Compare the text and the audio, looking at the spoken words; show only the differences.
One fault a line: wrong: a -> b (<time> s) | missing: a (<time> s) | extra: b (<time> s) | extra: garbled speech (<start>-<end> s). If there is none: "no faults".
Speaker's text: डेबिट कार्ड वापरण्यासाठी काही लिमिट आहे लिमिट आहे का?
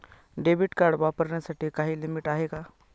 missing: लिमिट आहे (2.5 s)